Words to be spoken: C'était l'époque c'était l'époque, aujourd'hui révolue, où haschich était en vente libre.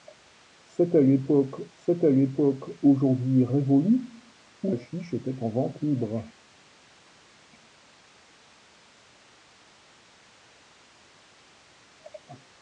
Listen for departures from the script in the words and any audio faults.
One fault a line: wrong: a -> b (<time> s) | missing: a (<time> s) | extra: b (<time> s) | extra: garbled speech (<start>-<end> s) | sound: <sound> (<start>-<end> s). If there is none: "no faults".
no faults